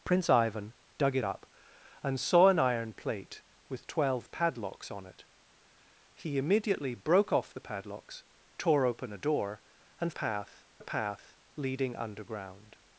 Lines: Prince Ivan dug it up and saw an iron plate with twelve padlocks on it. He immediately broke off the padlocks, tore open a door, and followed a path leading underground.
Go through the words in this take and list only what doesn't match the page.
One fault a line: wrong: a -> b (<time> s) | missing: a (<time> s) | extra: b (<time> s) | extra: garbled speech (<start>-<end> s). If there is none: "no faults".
wrong: followed -> path (10.1 s)